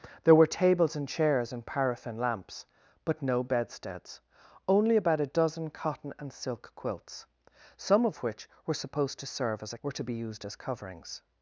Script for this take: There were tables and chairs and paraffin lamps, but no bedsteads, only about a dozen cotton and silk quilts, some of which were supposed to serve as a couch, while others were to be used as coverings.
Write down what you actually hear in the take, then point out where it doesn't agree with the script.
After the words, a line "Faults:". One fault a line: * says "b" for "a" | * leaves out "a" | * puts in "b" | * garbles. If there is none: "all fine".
There were tables and chairs and paraffin lamps, but no bedsteads, only about a dozen cotton and silk quilts, some of which were supposed to serve as a were to be used as coverings.
Faults:
* leaves out "couch while others"